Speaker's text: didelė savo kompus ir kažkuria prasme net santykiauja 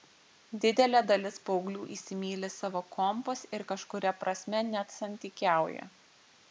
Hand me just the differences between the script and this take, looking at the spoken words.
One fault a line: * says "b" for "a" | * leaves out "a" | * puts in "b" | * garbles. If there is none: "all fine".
* puts in "dalis paauglių įsimyli"